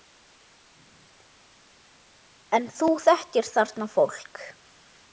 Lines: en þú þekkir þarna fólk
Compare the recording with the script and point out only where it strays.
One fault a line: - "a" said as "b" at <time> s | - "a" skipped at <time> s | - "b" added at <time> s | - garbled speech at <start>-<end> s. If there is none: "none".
none